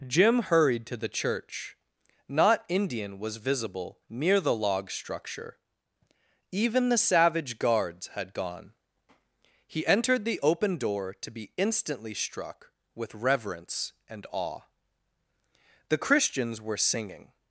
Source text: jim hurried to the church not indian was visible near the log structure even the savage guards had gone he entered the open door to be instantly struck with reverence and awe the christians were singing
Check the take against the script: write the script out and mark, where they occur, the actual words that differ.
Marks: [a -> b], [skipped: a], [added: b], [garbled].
jim hurried to the church not indian was visible near the log structure even the savage guards had gone he entered the open door to be instantly struck with reverence and awe the christians were singing